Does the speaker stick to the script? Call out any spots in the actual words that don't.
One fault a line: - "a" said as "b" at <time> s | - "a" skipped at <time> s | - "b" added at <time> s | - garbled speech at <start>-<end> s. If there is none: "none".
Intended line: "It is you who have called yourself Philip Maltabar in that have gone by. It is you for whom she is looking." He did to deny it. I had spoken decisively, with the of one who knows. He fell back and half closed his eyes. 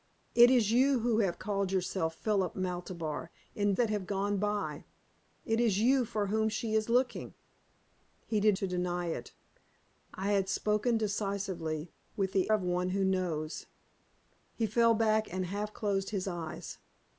none